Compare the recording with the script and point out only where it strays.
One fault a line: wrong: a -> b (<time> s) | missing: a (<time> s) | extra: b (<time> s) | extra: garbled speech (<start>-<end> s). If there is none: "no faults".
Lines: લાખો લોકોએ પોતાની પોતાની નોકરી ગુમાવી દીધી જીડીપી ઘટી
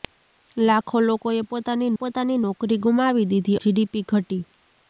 no faults